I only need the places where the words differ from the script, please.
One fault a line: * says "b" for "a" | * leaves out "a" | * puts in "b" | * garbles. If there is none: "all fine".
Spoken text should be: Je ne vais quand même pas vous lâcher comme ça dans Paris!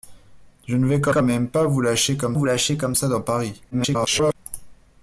* puts in "quand"
* puts in "vous lâcher comme"
* garbles